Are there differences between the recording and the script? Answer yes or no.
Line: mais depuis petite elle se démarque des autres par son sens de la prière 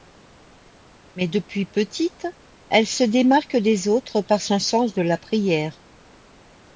no